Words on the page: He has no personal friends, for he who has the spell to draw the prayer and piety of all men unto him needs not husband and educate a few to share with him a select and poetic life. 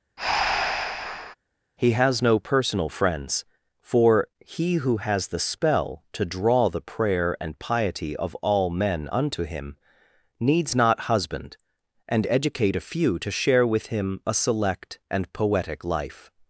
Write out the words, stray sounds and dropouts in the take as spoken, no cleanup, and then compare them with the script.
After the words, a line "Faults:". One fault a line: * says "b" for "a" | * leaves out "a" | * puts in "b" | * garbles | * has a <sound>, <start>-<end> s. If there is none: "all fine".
He has no personal friends, for he who has the spell to draw the prayer and piety of all men unto him needs not husband and educate a few to share with him a select and poetic life.
Faults:
* has a breath, 0.2-1.3 s